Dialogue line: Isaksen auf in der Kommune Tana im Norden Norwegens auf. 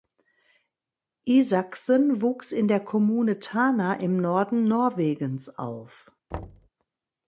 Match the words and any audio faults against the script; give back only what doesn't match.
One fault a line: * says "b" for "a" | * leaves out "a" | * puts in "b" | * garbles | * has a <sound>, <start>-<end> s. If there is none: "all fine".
* says "wuchs" for "auf"
* has a thud, 6.3-6.7 s